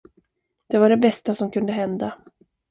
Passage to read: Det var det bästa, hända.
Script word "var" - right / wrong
right